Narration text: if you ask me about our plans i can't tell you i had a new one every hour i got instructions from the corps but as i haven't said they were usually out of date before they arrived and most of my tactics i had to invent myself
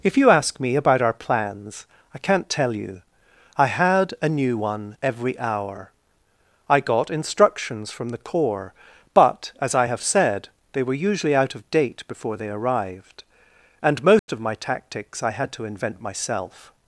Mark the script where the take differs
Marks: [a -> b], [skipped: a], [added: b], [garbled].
if you ask me about our plans i can't tell you i had a new one every hour i got instructions from the corps but as i [haven't -> have] said they were usually out of date before they arrived and most of my tactics i had to invent myself